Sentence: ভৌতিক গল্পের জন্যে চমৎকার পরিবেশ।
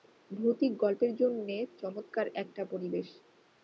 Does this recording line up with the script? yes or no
no